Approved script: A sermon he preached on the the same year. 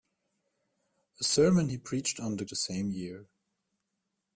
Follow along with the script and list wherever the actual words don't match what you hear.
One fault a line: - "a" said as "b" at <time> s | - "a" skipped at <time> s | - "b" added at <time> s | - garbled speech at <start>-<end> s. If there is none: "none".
none